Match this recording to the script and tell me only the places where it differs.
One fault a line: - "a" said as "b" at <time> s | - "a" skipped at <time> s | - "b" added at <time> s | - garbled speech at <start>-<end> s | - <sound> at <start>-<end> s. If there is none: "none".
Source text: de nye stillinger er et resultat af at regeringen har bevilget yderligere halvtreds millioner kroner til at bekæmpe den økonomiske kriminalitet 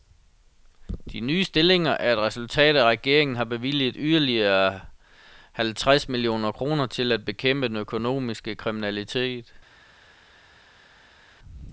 none